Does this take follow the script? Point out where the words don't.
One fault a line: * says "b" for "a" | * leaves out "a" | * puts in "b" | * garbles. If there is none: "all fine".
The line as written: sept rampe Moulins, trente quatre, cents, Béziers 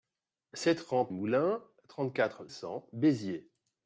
all fine